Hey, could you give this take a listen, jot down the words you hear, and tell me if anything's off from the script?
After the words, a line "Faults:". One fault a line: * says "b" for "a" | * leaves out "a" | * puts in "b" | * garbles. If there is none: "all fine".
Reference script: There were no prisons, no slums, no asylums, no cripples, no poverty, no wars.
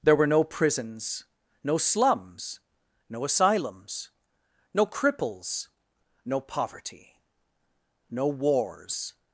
There were no prisons, no slums, no asylums, no cripples, no poverty, no wars.
Faults:
all fine